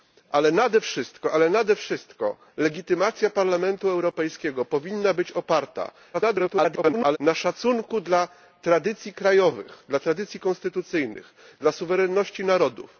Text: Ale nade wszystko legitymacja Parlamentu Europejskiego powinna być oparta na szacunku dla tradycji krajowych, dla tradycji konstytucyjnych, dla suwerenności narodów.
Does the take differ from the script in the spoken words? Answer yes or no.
yes